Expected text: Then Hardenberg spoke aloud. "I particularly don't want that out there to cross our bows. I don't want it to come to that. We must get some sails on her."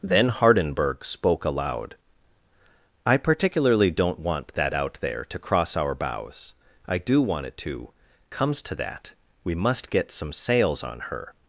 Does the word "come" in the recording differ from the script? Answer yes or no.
yes